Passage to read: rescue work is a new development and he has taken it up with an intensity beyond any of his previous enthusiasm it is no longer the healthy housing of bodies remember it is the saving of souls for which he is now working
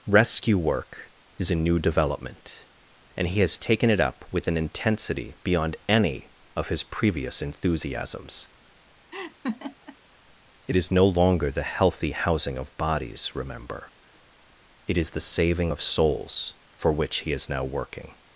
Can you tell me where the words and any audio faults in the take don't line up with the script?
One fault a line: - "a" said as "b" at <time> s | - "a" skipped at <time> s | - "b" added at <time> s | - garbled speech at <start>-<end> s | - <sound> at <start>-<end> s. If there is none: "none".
- "enthusiasm" said as "enthusiasms" at 7.4 s
- laugh at 9.1-10.0 s